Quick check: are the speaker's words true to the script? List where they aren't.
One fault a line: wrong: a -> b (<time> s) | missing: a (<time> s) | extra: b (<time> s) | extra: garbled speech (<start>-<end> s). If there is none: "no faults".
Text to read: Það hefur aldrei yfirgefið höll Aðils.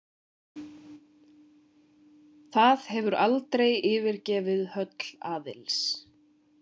no faults